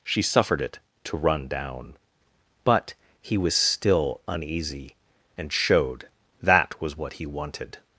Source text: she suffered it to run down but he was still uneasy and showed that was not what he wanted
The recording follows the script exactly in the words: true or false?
false